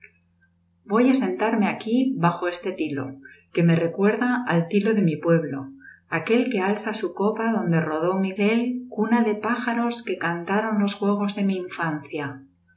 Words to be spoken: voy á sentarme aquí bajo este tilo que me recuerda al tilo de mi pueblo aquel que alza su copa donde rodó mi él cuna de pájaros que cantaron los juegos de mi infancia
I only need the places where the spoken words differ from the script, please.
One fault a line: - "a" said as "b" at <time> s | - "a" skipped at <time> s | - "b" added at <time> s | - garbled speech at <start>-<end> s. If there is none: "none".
none